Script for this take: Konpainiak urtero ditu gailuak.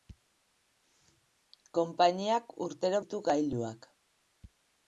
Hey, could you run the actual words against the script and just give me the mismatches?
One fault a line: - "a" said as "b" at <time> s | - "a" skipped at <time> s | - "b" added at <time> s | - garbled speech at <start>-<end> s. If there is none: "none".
none